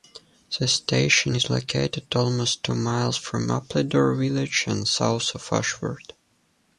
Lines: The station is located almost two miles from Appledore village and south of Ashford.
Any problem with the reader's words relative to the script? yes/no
no